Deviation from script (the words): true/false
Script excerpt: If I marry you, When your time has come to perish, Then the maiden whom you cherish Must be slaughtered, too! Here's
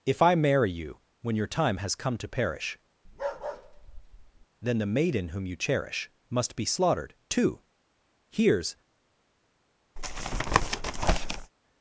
false